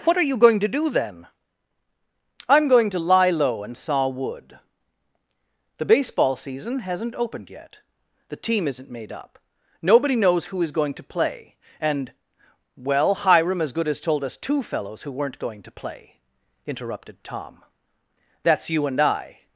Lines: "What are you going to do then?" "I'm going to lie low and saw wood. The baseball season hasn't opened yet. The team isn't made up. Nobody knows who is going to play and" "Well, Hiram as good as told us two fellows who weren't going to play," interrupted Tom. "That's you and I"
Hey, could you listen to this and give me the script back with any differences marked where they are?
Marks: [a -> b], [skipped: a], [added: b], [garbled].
"What are you going to do then?" "I'm going to lie low and saw wood. The baseball season hasn't opened yet. The team isn't made up. Nobody knows who is going to play and" "Well, Hiram as good as told us two fellows who weren't going to play," interrupted Tom. "That's you and I"